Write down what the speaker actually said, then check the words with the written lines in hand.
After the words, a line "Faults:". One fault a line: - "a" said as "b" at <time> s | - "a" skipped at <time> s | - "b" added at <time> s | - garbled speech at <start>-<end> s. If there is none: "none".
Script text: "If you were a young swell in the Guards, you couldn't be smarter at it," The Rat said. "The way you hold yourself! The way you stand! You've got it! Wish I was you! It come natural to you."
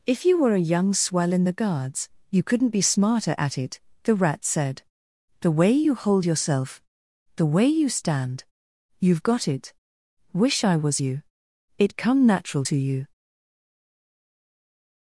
"If you were a young swell in the Guards, you couldn't be smarter at it," The Rat said. "The way you hold yourself! The way you stand! You've got it! Wish I was you! It come natural to you."
Faults:
none